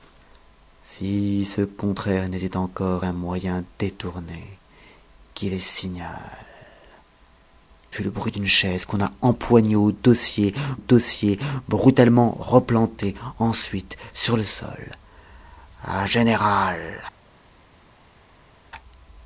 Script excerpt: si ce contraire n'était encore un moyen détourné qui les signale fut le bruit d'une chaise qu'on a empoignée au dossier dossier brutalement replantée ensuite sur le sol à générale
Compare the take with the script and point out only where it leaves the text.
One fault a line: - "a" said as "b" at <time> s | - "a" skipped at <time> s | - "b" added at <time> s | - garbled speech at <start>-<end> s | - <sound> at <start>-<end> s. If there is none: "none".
none